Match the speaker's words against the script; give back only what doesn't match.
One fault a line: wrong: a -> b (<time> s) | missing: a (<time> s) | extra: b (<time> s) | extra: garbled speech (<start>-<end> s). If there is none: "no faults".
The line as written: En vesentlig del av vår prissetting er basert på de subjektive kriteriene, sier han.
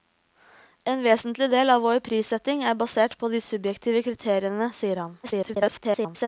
extra: garbled speech (5.2-6.3 s)